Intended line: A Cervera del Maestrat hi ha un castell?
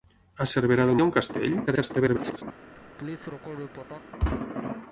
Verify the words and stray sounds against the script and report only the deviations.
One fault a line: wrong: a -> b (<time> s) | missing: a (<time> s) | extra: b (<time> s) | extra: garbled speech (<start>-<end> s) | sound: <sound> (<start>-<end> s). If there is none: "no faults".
missing: Maestrat (1.0 s)
extra: garbled speech (1.7-2.4 s)
sound: laugh (2.7-4.1 s)